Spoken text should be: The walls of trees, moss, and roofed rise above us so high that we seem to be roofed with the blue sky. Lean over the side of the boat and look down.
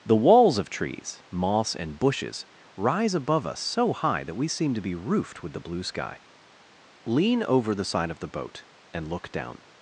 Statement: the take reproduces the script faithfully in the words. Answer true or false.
false